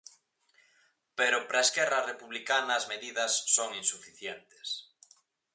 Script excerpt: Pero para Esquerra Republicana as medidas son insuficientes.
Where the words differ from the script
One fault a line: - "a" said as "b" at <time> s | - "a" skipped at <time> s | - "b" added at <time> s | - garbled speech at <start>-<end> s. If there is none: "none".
none